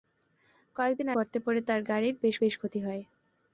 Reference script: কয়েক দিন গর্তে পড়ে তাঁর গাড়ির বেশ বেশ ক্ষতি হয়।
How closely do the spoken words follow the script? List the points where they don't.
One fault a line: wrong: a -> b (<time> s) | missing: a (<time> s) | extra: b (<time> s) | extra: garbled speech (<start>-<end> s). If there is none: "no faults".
no faults